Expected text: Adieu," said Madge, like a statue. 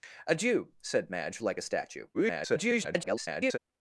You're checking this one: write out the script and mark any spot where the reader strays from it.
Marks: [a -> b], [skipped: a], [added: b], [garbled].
Adieu," said Madge, like a statue. [garbled]